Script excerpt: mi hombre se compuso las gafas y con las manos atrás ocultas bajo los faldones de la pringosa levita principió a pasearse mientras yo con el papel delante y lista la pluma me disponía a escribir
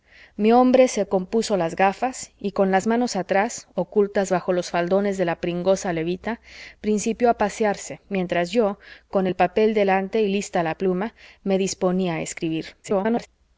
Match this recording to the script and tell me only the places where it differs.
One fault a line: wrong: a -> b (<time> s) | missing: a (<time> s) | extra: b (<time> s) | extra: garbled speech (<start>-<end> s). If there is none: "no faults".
extra: garbled speech (12.8-13.3 s)